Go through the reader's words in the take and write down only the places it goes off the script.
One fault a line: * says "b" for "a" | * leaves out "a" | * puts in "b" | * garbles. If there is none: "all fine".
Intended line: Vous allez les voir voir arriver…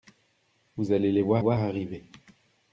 all fine